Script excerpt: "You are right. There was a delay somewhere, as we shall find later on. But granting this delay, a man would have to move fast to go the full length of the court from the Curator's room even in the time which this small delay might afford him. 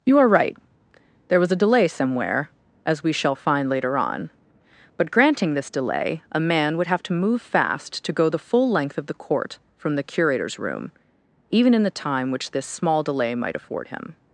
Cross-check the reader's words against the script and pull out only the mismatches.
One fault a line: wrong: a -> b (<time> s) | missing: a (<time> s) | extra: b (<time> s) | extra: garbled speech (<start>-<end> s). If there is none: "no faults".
no faults